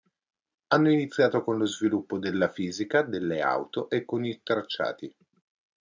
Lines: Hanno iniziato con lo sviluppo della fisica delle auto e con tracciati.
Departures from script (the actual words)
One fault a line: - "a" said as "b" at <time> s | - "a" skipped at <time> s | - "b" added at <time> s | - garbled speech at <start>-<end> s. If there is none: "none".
- "i" added at 4.2 s